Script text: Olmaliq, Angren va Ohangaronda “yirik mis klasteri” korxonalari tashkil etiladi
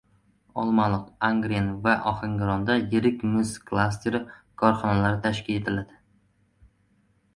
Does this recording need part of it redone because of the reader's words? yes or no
no